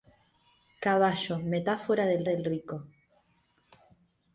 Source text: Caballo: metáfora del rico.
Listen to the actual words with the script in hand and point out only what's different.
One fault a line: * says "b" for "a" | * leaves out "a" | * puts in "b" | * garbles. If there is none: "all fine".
* puts in "del"